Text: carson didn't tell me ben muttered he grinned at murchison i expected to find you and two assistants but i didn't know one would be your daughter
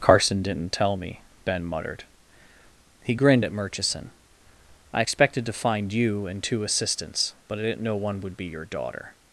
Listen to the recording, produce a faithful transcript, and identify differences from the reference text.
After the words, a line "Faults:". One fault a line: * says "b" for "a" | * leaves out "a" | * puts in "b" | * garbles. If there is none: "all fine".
carson didn't tell me ben muttered he grinned at murchison i expected to find you and two assistants but i didn't know one would be your daughter
Faults:
all fine